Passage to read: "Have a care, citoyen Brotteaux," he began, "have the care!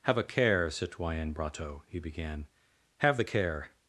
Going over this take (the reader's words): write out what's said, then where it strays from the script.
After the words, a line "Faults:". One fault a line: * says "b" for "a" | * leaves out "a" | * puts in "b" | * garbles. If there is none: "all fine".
"Have a care, citoyen Brotteaux," he began, "have the care!
Faults:
all fine